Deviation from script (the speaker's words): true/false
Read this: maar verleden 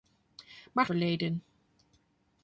false